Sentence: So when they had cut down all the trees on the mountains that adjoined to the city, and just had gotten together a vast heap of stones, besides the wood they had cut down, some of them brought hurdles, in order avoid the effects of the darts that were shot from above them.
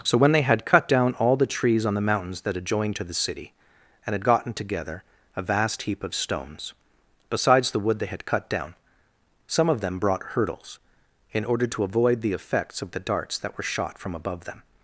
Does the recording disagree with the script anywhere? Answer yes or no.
yes